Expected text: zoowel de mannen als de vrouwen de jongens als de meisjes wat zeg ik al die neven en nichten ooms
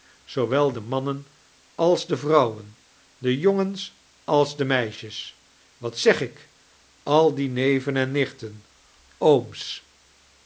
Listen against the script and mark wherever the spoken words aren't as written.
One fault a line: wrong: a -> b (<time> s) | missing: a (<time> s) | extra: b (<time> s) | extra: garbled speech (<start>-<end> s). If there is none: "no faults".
no faults